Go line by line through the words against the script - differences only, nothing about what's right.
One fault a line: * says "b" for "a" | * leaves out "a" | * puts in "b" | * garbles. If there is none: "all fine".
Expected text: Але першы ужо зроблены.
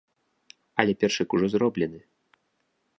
all fine